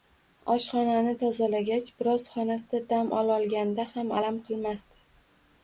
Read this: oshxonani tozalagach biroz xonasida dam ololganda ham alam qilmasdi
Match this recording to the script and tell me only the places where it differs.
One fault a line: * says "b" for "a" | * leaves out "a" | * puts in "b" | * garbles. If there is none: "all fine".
all fine